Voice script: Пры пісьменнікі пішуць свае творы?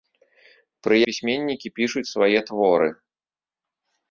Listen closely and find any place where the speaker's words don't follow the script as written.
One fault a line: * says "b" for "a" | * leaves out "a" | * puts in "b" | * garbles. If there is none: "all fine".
all fine